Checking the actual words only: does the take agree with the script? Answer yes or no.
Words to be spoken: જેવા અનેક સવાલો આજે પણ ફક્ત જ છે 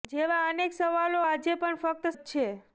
yes